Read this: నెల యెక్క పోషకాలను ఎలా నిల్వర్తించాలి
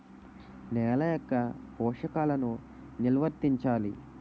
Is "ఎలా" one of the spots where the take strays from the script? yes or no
yes